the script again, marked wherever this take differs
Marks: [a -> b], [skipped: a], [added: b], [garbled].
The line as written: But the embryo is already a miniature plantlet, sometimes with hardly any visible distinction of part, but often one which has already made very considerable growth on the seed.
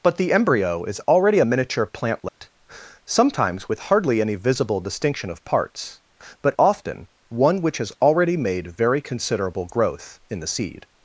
But the embryo is already a miniature plantlet, sometimes with hardly any visible distinction of [part, -> parts] but often one which has already made very considerable growth [on -> in] the seed.